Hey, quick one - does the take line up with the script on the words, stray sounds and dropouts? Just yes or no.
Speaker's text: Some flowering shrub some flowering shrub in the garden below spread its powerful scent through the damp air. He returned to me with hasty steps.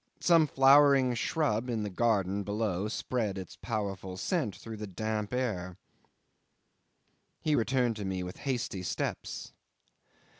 no